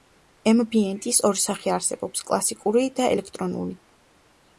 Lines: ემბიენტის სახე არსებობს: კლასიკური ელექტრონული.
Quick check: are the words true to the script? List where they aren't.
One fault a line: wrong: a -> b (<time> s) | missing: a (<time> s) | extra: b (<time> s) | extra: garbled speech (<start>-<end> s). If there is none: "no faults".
extra: ორი (1.3 s)
extra: და (3.0 s)